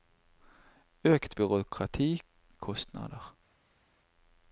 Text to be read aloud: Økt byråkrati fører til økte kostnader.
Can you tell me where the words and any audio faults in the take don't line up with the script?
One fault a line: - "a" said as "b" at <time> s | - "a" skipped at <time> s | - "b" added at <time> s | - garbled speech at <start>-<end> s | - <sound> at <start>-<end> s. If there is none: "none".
- "fører til økte" skipped at 2.2 s